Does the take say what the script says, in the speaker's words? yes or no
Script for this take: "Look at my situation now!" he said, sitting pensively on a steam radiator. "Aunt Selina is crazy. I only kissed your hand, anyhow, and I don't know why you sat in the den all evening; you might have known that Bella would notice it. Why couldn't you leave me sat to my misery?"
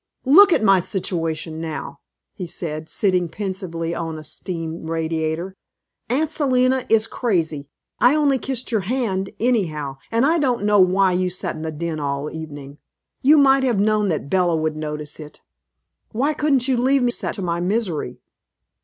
yes